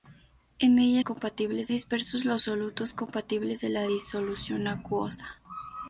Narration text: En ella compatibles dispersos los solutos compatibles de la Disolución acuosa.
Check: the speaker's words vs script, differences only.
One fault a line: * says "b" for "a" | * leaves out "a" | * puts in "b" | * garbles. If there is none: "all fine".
all fine